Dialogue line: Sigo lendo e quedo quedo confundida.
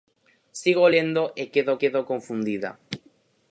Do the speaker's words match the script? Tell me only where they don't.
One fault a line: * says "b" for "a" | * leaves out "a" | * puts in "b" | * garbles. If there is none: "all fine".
all fine